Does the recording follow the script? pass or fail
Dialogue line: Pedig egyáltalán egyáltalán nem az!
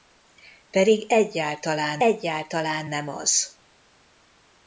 pass